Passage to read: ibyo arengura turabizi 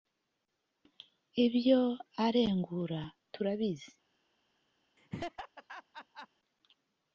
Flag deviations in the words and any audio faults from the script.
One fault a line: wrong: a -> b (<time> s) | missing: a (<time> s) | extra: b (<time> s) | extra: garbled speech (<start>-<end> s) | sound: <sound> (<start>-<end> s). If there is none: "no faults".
sound: laugh (5.0-6.3 s)